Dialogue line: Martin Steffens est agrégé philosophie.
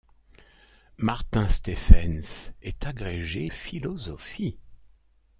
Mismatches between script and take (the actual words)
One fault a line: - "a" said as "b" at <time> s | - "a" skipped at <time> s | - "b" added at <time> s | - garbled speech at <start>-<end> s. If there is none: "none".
none